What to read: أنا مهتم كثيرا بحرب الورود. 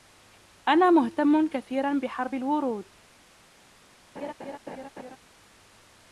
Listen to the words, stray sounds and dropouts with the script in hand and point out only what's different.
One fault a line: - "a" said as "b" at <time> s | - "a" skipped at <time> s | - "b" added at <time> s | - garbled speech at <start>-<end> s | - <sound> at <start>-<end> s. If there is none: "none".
- laugh at 4.2-5.2 s